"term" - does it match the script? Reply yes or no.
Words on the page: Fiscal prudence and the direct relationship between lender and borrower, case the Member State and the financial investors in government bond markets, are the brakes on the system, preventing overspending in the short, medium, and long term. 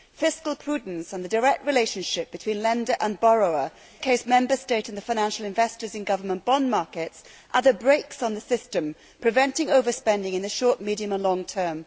yes